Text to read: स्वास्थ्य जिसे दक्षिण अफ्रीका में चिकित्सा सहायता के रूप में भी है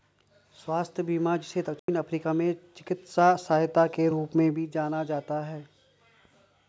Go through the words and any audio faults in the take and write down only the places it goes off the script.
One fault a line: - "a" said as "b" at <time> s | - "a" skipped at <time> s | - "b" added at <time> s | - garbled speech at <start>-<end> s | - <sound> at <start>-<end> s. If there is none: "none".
- "बीमा" added at 1.0 s
- dropout at 1.8-1.9 s
- "जाना जाता" added at 4.7 s